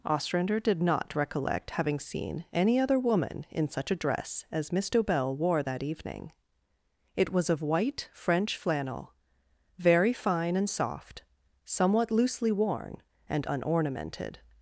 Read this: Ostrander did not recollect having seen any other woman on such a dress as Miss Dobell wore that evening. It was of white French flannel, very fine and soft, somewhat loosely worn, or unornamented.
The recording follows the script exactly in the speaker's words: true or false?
false